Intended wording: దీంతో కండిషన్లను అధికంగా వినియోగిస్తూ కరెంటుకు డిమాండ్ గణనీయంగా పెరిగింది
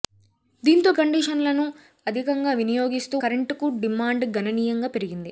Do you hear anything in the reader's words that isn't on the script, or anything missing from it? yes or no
no